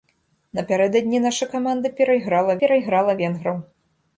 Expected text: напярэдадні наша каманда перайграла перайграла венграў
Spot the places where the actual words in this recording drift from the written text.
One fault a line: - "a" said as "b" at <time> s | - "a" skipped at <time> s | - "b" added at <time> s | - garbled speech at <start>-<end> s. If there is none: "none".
none